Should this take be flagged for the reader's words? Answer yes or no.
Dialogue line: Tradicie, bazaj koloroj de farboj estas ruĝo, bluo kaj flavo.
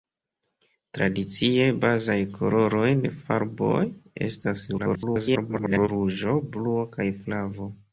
yes